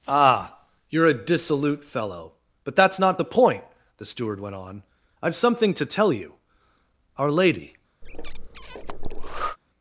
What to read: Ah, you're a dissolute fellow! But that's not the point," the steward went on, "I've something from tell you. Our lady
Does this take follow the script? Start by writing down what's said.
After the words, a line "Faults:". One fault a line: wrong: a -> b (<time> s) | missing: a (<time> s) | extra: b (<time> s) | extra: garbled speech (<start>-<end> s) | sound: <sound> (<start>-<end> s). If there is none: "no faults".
Ah, you're a dissolute fellow! But that's not the point," the steward went on, "I've something to tell you. Our lady
Faults:
wrong: from -> to (5.7 s)
sound: breath (8.0-9.6 s)